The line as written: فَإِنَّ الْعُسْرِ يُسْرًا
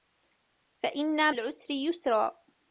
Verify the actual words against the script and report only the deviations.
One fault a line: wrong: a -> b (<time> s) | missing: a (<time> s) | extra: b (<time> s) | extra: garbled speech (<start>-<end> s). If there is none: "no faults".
no faults